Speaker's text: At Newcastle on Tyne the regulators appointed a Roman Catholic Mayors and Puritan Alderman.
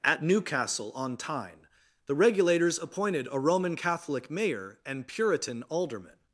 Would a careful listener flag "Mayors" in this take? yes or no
yes